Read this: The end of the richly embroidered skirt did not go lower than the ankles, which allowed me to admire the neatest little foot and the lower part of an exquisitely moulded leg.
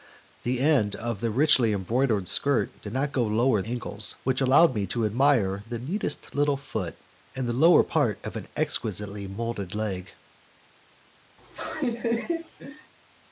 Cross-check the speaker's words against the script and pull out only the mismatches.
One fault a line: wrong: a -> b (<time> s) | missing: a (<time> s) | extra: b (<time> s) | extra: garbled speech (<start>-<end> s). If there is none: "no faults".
missing: than the (3.6 s)